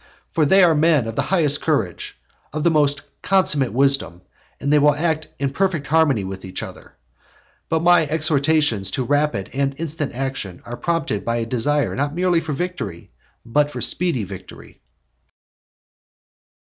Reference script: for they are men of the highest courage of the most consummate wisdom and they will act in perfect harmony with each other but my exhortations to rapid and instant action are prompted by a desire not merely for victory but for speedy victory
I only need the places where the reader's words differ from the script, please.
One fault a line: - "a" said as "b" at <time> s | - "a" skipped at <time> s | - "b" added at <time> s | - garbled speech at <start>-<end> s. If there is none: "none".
none